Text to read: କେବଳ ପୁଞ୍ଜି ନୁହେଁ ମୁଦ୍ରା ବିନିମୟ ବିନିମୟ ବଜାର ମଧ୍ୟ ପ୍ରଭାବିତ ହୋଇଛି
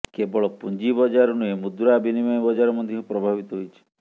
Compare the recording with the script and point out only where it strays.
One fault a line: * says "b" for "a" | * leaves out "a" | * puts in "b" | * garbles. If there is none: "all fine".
* puts in "ବଜାର"
* leaves out "ବିନିମୟ"